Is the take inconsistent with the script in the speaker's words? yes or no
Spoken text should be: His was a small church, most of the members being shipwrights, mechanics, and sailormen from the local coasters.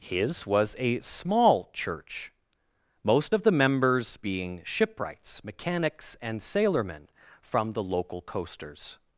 no